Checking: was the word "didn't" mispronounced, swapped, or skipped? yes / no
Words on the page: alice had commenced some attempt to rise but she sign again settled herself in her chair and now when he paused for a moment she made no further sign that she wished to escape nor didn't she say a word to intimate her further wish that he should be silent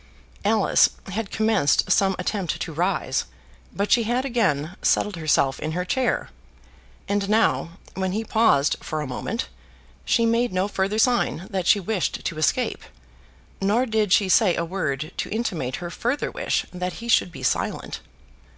yes